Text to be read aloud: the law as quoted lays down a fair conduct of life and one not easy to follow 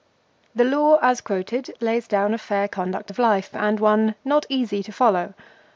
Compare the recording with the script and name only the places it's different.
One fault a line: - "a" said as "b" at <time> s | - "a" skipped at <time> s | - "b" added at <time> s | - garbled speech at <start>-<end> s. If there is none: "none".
none